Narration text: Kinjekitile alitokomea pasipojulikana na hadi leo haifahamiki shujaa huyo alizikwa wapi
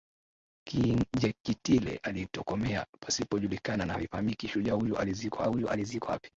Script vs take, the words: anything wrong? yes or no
yes